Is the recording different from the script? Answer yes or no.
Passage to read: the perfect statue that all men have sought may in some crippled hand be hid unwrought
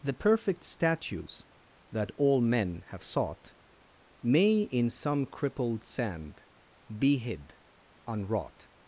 yes